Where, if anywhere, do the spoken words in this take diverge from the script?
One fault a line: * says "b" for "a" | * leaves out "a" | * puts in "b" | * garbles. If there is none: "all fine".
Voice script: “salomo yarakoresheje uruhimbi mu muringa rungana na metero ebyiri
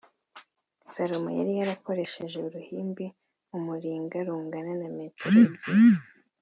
* puts in "yari"